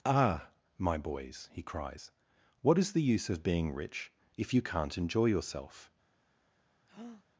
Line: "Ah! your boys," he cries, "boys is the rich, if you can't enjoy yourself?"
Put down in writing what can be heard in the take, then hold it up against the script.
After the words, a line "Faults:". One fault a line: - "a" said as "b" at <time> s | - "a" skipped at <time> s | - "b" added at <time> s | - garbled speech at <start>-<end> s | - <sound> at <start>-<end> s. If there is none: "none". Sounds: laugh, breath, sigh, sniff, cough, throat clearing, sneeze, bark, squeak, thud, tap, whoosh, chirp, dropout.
"Ah! my boys," he cries, "what is the use of being rich, if you can't enjoy yourself?"
Faults:
- "your" said as "my" at 0.8 s
- "boys" said as "what" at 2.6 s
- "use of being" added at 3.0 s
- breath at 6.9-7.3 s